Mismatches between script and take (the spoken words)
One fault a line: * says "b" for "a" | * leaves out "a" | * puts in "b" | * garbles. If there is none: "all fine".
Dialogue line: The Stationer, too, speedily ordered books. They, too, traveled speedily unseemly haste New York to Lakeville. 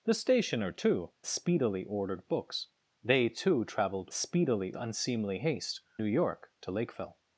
all fine